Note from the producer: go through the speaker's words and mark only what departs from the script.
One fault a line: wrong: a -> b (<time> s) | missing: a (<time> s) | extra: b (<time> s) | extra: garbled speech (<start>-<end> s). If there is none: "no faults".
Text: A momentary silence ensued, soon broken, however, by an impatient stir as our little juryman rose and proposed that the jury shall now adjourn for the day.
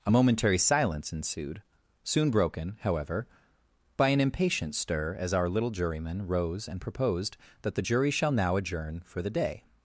no faults